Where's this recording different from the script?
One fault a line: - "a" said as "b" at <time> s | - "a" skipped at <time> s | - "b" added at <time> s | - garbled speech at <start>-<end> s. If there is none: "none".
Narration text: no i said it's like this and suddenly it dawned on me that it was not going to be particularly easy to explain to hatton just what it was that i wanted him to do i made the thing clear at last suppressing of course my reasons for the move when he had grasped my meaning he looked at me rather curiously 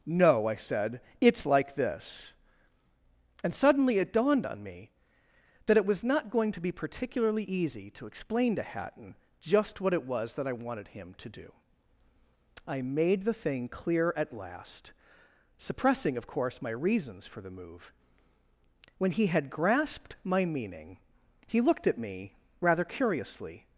none